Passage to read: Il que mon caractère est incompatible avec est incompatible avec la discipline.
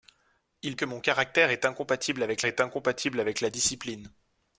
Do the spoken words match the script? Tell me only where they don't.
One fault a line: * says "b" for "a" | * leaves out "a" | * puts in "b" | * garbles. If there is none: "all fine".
all fine